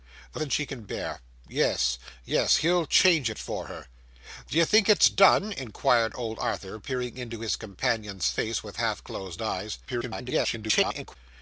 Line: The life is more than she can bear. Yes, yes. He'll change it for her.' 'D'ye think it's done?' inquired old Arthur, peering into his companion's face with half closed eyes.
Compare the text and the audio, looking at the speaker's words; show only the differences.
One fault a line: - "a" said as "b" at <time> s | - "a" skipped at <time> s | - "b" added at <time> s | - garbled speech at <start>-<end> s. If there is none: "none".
- "life is more" skipped at 0.4 s
- garbled speech at 9.9-11.2 s